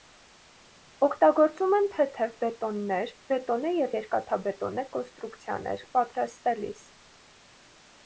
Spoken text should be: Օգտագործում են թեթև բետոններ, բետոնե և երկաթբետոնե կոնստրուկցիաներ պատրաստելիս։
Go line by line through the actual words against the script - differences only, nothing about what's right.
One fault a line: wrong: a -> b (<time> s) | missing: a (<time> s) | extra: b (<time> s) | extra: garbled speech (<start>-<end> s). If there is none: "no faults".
no faults